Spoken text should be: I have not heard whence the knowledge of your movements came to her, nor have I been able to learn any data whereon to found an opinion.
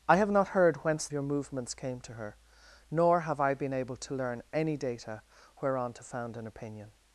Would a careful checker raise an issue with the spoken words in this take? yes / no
yes